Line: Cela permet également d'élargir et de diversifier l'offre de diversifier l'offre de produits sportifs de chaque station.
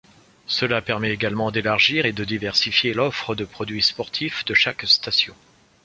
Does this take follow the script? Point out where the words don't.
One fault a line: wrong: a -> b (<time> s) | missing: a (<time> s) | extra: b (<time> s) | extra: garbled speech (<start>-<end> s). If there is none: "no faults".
missing: diversifier l'offre de (3.4 s)